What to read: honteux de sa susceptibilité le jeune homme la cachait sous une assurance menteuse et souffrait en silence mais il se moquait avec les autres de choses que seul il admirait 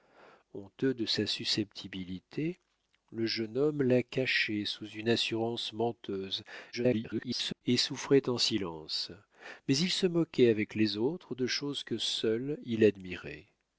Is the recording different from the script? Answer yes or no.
yes